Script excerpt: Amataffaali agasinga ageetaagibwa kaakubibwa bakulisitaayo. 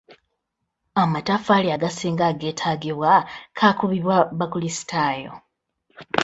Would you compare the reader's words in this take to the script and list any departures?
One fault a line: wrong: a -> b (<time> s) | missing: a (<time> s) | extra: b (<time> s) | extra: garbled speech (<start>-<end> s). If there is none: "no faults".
no faults